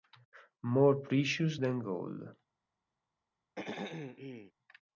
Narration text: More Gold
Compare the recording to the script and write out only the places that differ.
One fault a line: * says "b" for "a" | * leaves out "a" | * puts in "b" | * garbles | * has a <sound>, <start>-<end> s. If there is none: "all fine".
* puts in "Precious Than"
* has a throat clearing, 3.6-4.5 s